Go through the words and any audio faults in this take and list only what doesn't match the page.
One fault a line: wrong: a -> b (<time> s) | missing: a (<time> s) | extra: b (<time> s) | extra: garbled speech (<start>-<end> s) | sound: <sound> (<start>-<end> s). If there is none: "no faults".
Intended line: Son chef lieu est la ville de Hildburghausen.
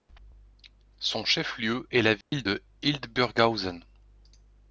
sound: dropout (2.2-2.3 s)